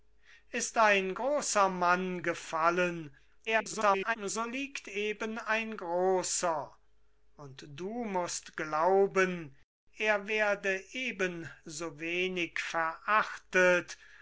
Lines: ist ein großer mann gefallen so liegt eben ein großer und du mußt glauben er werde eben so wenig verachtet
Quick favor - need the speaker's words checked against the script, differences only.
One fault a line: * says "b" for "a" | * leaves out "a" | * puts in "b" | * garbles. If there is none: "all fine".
* garbles